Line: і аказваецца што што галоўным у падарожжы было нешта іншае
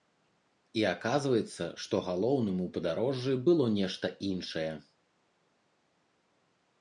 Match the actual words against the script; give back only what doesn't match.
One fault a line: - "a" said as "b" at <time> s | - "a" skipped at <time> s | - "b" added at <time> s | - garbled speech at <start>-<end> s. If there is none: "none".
- "што" skipped at 1.9 s